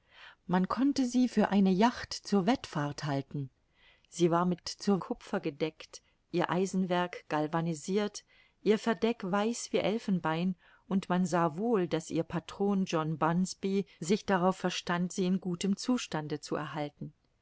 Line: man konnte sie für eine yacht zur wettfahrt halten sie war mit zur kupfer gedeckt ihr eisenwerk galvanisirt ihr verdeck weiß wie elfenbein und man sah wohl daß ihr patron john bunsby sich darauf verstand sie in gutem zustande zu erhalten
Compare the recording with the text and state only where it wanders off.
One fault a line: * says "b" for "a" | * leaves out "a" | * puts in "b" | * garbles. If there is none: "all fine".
all fine